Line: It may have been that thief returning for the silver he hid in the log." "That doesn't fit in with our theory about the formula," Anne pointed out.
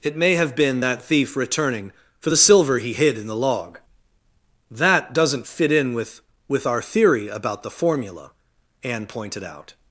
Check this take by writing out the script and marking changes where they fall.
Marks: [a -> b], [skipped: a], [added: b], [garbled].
It may have been that thief returning for the silver he hid in the log." "That doesn't fit in with [added: with] our theory about the formula," Anne pointed out.